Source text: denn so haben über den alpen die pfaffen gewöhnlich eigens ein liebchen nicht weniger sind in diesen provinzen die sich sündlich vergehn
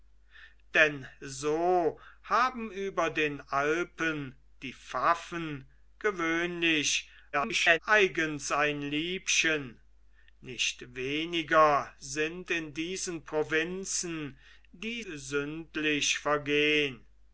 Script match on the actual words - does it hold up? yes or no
no